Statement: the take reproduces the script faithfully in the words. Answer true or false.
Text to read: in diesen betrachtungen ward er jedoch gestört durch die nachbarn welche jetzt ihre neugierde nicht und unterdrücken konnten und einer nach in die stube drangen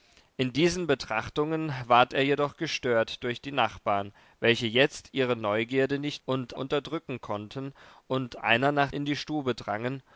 true